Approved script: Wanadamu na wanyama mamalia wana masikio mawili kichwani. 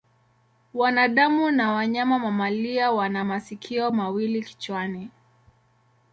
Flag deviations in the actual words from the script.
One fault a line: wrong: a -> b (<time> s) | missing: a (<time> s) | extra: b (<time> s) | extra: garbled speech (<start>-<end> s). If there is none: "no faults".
no faults